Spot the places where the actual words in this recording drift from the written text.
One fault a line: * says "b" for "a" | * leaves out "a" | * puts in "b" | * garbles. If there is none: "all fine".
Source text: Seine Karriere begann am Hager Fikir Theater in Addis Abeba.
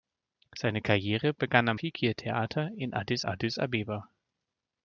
* leaves out "Hager"
* puts in "Addis"